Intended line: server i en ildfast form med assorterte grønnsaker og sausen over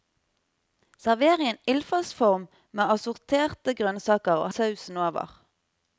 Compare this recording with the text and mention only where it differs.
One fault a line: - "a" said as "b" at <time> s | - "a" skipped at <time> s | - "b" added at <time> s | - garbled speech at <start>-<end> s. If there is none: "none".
none